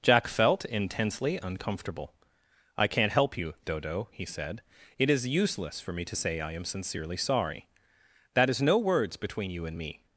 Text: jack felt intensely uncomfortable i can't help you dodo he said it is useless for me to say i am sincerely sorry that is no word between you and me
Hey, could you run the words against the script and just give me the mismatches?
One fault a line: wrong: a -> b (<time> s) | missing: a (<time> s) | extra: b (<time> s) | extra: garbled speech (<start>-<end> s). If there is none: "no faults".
wrong: word -> words (8.8 s)